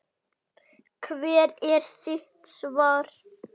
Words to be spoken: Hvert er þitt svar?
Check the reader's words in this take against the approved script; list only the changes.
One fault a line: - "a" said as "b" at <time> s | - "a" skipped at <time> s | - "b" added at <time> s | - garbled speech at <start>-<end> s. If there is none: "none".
none